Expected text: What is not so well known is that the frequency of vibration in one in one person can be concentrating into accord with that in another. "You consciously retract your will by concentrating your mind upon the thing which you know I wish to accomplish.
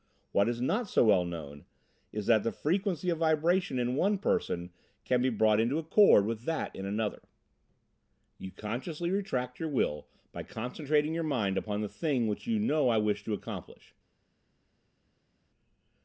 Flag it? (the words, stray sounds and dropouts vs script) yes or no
yes